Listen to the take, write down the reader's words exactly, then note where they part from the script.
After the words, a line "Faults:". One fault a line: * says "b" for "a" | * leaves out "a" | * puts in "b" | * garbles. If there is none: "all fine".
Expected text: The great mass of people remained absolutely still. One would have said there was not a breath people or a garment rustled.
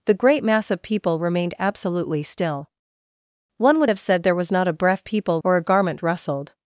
The great mass of people remained absolutely still. One would have said there was not a breath people or a garment rustled.
Faults:
all fine